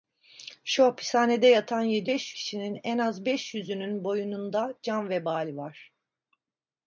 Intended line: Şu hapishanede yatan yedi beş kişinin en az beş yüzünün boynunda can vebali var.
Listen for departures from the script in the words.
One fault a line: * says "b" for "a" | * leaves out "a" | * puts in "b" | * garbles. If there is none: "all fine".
all fine